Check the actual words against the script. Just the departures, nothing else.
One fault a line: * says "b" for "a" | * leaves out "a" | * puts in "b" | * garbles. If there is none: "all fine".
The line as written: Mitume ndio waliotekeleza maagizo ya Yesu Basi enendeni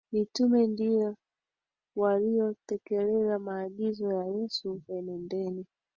* leaves out "Basi"